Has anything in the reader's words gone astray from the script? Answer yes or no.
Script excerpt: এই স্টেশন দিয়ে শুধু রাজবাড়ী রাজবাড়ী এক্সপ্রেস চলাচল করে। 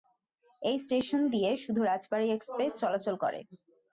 yes